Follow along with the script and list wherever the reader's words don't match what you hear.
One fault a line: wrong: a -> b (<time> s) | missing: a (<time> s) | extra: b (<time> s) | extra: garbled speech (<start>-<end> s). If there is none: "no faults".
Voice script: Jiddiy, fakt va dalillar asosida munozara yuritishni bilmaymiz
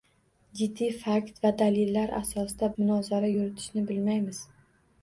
no faults